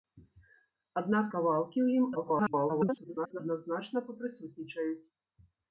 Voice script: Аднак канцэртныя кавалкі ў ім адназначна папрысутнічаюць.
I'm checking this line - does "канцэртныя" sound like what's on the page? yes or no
no